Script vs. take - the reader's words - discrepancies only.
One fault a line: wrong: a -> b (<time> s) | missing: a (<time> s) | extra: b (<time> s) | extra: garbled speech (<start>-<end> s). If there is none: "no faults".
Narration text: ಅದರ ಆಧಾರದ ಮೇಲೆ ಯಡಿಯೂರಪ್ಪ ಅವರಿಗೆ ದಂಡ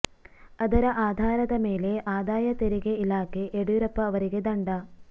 extra: ಆದಾಯ ತೆರಿಗೆ ಇಲಾಖೆ (2.1 s)